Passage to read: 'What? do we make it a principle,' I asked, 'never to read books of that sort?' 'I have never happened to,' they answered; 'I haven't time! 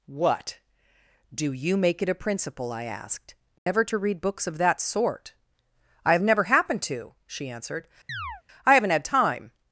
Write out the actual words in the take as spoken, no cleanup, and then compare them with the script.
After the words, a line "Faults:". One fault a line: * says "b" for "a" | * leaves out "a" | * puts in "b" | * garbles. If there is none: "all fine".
'What? do you make it a principle,' I asked, 'never to read books of that sort?' 'I have never happened to,' she answered; 'I haven't had time!
Faults:
* says "you" for "we"
* says "she" for "they"
* puts in "had"